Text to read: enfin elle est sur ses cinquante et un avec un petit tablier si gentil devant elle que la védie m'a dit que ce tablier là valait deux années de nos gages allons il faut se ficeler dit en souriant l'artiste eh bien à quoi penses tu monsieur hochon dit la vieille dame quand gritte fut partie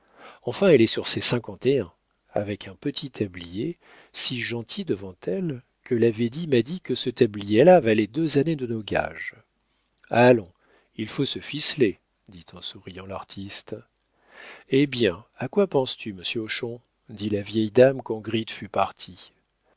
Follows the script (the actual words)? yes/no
yes